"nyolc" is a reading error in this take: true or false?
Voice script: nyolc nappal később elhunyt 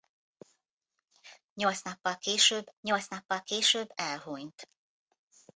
false